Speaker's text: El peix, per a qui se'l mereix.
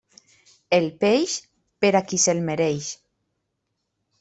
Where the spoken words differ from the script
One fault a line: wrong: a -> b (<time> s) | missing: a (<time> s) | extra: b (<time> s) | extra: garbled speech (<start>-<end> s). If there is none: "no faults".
no faults